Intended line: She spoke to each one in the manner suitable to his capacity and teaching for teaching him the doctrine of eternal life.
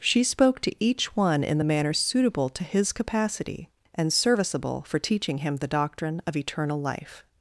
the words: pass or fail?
fail